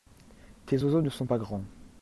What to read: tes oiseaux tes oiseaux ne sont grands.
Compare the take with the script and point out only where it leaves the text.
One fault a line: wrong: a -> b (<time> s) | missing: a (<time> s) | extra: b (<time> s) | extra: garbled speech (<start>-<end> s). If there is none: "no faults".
missing: tes oiseaux (1.0 s)
extra: pas (1.2 s)